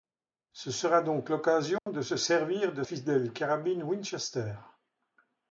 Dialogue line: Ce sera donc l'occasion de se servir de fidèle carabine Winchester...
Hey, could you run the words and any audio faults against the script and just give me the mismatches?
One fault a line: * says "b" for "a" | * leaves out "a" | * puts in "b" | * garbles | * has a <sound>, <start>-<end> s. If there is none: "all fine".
* has a dropout, 1.8-1.9 s